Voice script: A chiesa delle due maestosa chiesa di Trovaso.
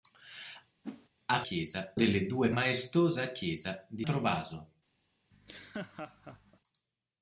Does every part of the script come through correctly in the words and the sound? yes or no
no